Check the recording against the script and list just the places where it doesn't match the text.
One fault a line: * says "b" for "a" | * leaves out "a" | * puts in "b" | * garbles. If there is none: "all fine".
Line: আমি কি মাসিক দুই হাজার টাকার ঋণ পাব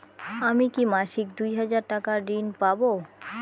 all fine